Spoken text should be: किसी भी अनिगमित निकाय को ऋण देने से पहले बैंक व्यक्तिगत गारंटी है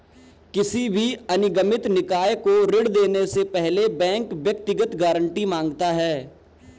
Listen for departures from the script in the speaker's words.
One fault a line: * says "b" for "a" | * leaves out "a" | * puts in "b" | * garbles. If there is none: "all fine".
* puts in "माँगता"